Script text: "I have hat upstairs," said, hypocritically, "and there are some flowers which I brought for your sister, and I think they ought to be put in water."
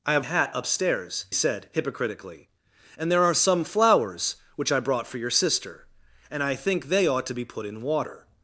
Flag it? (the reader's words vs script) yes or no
no